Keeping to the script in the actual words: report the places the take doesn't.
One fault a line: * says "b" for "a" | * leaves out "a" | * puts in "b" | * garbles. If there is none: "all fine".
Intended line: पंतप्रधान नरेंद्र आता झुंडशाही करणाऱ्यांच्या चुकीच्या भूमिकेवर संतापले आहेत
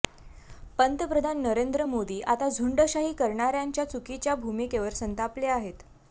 * puts in "मोदी"